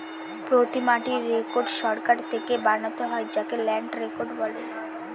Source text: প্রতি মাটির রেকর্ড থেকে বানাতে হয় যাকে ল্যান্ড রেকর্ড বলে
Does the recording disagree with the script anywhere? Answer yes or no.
yes